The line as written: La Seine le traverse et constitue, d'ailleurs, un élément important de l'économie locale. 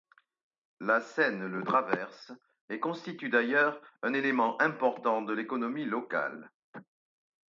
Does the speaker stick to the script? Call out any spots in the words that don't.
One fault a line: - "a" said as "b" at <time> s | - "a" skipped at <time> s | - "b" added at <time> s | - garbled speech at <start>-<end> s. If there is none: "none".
none